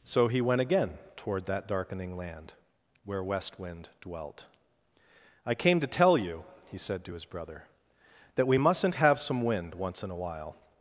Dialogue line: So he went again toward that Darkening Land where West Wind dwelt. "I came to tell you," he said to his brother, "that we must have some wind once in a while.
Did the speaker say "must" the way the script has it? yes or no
no